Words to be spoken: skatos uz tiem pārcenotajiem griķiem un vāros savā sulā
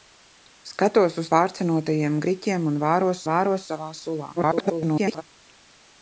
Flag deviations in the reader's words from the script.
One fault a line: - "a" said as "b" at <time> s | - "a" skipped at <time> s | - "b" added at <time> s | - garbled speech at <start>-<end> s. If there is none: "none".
- "tiem" skipped at 1.3 s
- "vāros" added at 3.3 s
- garbled speech at 4.4-5.2 s